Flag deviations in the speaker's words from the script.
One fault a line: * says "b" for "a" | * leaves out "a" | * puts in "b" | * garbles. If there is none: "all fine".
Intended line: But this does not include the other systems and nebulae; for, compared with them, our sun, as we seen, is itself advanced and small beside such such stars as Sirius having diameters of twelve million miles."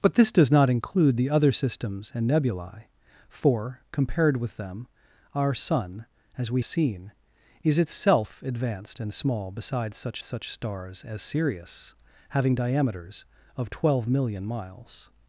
all fine